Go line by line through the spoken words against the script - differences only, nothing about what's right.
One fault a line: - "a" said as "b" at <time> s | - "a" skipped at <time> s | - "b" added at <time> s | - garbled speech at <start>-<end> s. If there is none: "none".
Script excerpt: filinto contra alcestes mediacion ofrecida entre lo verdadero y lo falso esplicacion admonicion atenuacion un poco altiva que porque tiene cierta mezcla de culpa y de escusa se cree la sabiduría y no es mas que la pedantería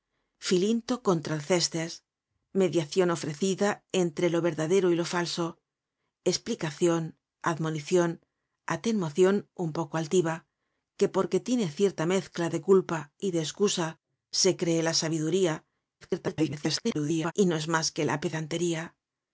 - garbled speech at 16.0-17.3 s